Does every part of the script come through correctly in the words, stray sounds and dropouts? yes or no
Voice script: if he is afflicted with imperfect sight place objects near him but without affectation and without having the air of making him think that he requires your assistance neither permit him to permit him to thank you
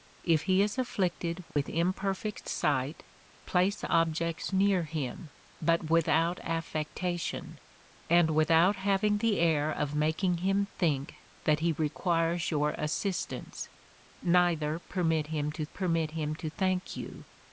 no